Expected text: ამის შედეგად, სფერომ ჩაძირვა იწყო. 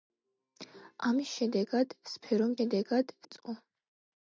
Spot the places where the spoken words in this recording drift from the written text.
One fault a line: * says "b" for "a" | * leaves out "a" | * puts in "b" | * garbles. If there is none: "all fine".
* says "შედეგად" for "ჩაძირვა"